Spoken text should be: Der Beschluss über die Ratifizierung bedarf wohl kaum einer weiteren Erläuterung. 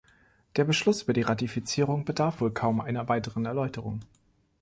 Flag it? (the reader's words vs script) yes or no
no